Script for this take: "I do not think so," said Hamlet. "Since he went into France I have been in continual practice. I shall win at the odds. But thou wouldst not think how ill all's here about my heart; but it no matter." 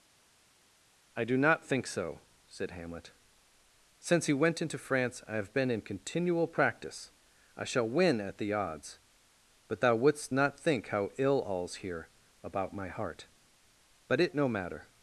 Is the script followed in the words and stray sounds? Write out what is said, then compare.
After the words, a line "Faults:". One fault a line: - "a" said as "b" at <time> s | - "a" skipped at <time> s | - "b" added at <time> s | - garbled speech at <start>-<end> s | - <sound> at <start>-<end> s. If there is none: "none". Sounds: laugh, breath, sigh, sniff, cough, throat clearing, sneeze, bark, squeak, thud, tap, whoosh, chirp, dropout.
"I do not think so," said Hamlet. "Since he went into France I have been in continual practice. I shall win at the odds. But thou wouldst not think how ill all's here about my heart; but it no matter."
Faults:
none